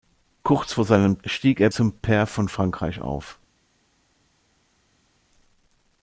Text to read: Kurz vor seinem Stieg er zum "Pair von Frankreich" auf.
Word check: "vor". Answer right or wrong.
right